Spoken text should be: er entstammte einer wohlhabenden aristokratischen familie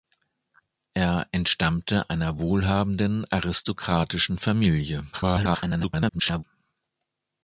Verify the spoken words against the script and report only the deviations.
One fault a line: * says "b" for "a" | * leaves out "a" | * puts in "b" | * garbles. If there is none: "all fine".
* garbles